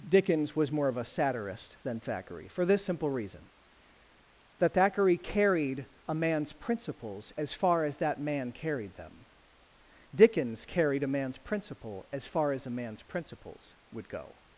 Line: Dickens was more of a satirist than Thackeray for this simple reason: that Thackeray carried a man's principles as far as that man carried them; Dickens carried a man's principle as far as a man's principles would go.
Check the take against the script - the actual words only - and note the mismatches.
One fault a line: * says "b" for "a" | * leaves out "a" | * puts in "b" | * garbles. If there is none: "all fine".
all fine